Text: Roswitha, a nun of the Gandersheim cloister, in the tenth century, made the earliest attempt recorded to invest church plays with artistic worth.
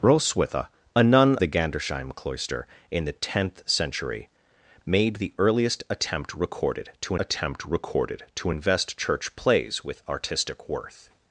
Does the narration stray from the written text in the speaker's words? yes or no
yes